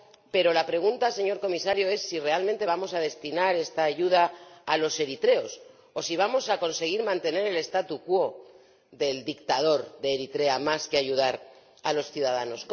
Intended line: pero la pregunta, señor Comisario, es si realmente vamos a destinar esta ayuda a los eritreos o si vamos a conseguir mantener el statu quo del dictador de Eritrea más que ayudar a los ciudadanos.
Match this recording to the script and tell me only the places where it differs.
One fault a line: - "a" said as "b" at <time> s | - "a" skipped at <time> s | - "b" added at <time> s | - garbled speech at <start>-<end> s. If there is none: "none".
none